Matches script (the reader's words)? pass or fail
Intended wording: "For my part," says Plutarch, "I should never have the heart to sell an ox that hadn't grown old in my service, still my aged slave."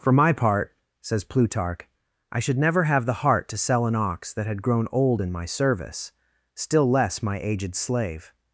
fail